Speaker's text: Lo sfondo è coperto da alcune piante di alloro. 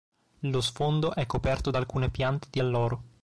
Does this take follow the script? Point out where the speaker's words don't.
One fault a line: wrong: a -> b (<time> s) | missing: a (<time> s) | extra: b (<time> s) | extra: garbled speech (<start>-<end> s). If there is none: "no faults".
no faults